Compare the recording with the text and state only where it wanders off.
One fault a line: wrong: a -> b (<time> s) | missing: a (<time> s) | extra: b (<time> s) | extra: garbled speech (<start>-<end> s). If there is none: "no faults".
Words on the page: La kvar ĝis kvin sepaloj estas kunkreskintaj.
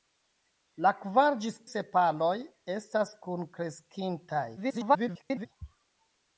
missing: kvin (1.6 s)
extra: garbled speech (4.6-5.5 s)